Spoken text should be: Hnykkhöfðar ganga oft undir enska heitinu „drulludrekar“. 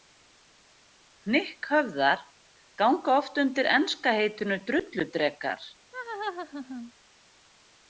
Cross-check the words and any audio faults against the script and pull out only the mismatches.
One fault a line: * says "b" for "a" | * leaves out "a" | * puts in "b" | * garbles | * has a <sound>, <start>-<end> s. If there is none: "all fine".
* has a laugh, 5.9-6.9 s